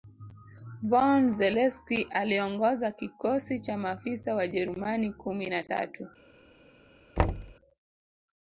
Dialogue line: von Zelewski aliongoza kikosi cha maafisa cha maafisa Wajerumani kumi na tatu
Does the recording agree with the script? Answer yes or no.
no